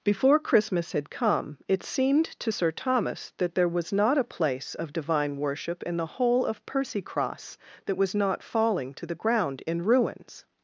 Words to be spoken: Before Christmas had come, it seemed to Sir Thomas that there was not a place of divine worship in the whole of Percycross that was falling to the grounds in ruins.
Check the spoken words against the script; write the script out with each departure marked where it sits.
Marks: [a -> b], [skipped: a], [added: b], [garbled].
Before Christmas had come, it seemed to Sir Thomas that there was not a place of divine worship in the whole of Percycross that was [added: not] falling to the [grounds -> ground] in ruins.